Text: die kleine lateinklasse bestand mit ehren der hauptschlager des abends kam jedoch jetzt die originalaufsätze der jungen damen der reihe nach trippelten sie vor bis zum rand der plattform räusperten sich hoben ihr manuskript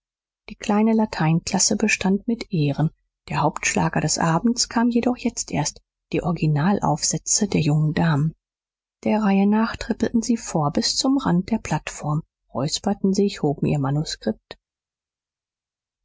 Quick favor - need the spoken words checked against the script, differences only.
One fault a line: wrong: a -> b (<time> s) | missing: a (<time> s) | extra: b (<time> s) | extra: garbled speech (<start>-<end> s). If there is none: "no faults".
extra: erst (5.5 s)